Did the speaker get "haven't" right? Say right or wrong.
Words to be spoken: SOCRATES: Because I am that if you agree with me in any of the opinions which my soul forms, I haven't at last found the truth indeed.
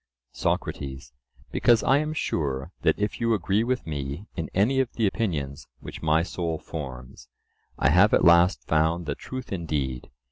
wrong